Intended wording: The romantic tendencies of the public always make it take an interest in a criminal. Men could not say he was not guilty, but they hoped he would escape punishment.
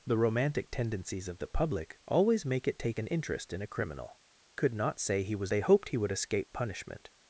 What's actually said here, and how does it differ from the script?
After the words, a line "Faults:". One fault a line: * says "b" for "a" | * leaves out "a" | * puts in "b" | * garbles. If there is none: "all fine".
The romantic tendencies of the public always make it take an interest in a criminal. Could not say he was they hoped he would escape punishment.
Faults:
* leaves out "Men"
* leaves out "not guilty but"